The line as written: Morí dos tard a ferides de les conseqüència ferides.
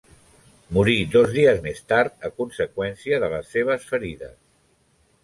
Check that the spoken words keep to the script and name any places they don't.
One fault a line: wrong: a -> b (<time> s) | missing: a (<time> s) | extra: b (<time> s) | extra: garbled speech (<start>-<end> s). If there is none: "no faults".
extra: dies més (1.4 s)
wrong: ferides -> conseqüència (2.4 s)
wrong: conseqüència -> seves (3.6 s)